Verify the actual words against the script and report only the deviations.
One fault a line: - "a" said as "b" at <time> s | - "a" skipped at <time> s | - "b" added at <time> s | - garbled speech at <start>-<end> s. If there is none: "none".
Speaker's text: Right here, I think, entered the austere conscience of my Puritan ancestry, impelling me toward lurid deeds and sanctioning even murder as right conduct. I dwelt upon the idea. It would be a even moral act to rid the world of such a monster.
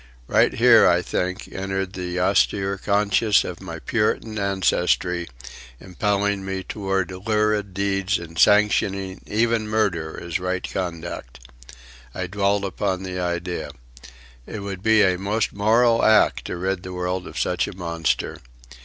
- "even" said as "most" at 15.2 s